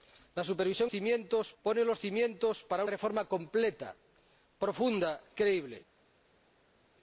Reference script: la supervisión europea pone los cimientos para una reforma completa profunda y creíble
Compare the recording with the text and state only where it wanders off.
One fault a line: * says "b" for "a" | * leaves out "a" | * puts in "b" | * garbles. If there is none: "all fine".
* says "cimientos" for "europea"
* leaves out "una"
* leaves out "y"